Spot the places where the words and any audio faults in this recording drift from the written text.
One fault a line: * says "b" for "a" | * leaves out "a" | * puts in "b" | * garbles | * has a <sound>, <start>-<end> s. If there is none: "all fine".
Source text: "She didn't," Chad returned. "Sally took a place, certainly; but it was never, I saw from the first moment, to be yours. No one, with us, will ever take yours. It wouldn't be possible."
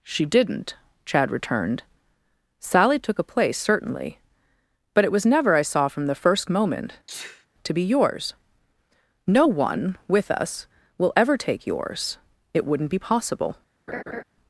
* has a sneeze, 7.1-7.5 s
* has a laugh, 13.9-14.2 s